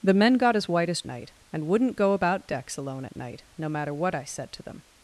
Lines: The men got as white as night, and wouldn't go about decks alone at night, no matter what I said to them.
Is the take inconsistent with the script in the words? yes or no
no